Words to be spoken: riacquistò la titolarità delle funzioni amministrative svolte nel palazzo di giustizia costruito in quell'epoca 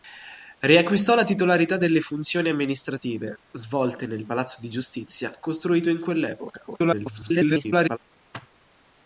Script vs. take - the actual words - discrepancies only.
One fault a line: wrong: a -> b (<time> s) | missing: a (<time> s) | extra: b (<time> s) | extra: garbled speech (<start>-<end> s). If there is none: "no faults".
extra: garbled speech (6.7-8.0 s)